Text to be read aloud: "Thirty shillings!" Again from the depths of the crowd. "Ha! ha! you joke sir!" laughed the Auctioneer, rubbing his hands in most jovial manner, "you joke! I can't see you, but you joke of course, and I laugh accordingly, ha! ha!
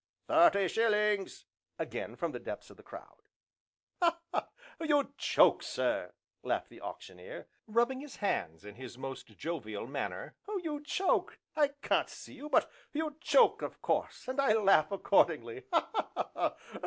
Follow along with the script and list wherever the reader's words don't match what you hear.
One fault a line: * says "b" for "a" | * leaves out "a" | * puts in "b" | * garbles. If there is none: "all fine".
* puts in "his"